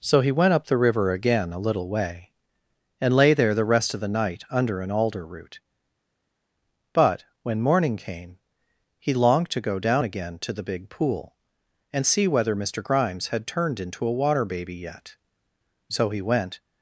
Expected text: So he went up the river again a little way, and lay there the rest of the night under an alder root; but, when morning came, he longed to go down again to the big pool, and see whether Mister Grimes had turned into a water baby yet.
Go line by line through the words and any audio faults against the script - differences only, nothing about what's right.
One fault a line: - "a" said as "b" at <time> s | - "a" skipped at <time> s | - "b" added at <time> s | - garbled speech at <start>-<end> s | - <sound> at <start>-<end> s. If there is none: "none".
- "So he went" added at 15.9 s